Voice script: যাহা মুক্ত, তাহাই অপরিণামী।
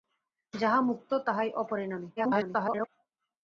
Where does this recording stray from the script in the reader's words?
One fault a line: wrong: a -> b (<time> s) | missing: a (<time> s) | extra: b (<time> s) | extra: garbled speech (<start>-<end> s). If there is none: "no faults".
extra: garbled speech (2.2-2.9 s)